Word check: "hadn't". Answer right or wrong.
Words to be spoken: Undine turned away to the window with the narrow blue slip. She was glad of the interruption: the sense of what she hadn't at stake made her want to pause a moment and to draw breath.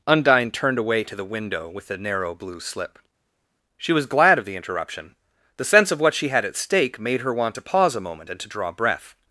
wrong